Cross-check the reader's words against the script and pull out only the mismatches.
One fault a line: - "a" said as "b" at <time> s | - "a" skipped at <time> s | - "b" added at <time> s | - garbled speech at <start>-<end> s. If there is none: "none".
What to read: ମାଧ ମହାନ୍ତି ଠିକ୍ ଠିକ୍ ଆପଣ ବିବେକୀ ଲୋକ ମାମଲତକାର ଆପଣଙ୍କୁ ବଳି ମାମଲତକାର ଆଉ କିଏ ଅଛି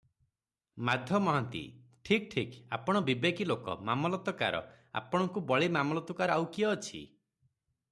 none